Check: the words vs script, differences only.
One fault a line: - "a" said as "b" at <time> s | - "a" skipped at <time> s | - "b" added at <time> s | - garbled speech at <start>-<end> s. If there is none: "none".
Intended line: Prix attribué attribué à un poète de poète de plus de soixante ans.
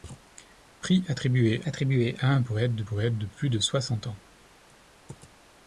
none